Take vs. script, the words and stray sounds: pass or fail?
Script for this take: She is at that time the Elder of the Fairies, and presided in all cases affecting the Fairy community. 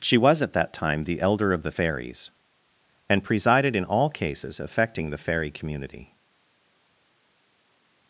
fail